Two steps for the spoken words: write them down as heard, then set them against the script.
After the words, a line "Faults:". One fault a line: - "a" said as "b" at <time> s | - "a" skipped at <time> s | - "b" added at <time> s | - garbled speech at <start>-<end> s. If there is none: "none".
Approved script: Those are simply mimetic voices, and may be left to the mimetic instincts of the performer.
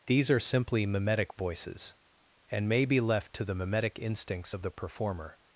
These are simply mimetic voices, and may be left to the mimetic instincts of the performer.
Faults:
- "Those" said as "These" at 0.1 s